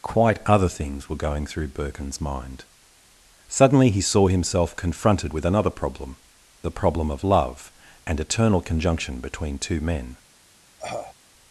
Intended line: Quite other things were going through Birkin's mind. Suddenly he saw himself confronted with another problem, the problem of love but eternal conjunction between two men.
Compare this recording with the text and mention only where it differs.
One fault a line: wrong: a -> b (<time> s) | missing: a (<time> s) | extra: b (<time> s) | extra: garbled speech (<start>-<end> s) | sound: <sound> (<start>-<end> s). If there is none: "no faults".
wrong: but -> and (8.1 s)
sound: cough (10.8-11.1 s)